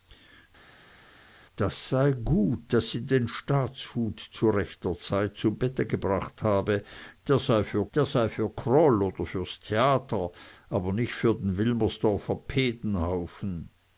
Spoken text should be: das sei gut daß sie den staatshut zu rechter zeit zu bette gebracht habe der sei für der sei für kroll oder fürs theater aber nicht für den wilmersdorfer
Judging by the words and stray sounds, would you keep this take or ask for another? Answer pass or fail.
pass